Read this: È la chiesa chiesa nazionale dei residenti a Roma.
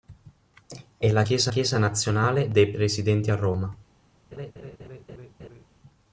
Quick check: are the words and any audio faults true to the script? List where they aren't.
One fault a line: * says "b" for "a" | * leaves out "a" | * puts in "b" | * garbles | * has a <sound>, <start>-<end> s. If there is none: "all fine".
* has a laugh, 4.3-5.7 s